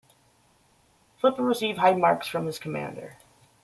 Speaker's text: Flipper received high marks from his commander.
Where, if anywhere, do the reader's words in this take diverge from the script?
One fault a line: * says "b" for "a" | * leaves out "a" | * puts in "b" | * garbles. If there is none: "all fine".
all fine